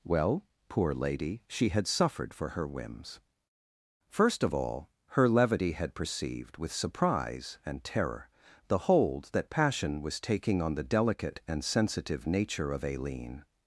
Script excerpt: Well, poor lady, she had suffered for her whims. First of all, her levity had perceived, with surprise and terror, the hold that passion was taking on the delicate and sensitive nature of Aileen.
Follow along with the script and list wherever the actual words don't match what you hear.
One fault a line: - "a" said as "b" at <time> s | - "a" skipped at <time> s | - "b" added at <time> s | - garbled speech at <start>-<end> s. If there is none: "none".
none